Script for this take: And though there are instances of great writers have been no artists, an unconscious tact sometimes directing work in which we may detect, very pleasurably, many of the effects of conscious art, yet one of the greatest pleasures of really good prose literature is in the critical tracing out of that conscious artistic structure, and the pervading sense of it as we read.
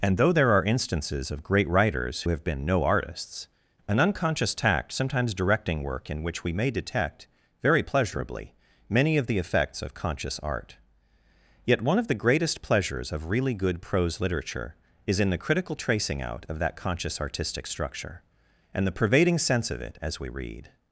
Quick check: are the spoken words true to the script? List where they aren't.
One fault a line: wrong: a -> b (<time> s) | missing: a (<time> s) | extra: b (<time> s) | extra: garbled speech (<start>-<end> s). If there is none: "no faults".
no faults